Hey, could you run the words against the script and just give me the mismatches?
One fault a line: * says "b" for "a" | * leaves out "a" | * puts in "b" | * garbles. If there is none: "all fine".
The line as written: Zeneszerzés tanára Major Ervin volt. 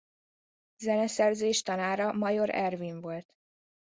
all fine